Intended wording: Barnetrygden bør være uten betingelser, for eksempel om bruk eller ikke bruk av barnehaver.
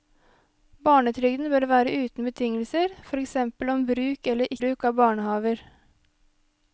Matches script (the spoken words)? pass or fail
fail